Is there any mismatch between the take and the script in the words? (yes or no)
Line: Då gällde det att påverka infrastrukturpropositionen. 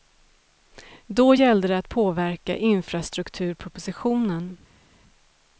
no